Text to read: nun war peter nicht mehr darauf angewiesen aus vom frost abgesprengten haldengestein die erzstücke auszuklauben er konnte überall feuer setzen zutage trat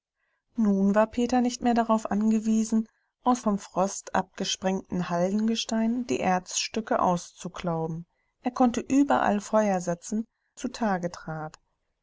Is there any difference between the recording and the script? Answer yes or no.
no